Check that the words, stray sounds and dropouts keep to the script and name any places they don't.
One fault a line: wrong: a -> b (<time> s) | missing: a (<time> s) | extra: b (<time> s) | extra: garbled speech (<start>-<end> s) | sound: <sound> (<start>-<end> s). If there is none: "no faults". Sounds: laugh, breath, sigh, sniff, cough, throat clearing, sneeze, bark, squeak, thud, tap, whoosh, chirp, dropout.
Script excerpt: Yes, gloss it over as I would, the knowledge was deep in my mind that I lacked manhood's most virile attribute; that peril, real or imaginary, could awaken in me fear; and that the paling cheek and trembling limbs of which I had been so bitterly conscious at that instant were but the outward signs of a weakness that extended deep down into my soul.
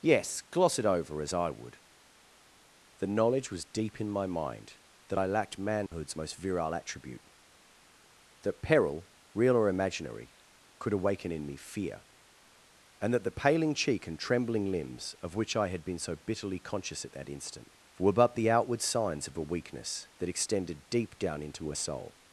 sound: dropout (5.9-5.9 s)
wrong: my -> her (21.7 s)